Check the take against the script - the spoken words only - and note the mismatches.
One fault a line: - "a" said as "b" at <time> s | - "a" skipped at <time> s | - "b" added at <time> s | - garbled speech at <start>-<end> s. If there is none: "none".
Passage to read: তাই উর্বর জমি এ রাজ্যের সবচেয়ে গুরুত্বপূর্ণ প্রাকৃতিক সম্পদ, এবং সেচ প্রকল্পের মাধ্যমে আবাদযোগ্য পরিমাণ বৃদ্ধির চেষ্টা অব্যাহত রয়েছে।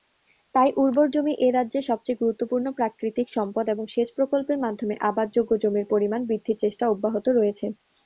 - "জমির" added at 5.6 s